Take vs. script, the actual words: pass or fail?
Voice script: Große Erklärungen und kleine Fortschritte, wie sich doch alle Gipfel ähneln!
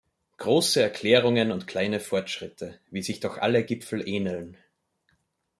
pass